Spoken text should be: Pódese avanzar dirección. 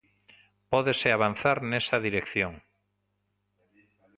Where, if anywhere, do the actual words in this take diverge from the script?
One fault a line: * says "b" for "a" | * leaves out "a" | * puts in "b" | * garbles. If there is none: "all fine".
* puts in "nesa"